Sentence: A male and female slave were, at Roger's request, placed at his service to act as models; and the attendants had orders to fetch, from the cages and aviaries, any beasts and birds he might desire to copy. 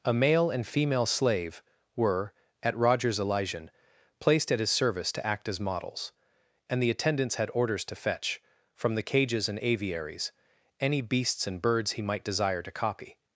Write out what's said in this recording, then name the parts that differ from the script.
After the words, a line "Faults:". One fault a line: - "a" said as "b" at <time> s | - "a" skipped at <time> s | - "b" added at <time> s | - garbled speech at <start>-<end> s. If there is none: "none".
A male and female slave were, at Roger's elysian, placed at his service to act as models; and the attendants had orders to fetch, from the cages and aviaries, any beasts and birds he might desire to copy.
Faults:
- "request" said as "elysian" at 3.2 s